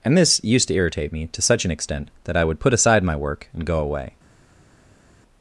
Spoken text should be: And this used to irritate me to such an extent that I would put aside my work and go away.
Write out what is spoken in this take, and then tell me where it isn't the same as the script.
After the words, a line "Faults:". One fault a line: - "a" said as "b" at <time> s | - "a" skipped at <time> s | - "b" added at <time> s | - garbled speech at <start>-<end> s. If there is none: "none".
And this used to irritate me to such an extent that I would put aside my work and go away.
Faults:
none